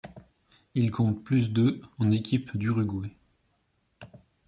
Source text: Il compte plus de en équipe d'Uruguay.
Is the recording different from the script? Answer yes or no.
no